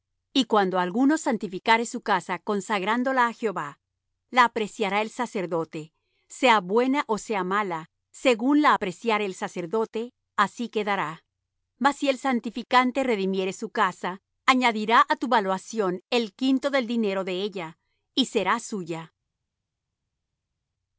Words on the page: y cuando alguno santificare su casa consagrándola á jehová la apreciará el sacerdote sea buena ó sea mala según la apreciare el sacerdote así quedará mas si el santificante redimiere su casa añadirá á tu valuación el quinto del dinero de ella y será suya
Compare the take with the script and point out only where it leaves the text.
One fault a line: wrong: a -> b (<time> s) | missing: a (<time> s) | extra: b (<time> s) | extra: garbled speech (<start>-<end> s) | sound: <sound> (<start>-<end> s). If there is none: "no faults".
no faults